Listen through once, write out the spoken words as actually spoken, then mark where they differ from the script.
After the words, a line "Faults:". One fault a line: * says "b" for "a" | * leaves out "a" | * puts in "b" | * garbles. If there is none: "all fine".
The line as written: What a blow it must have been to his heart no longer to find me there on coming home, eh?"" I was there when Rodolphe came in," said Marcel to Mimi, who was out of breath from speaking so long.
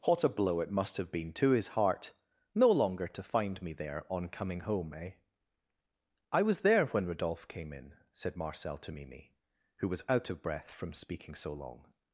What a blow it must have been to his heart no longer to find me there on coming home, eh?"" I was there when Rodolphe came in," said Marcel to Mimi, who was out of breath from speaking so long.
Faults:
all fine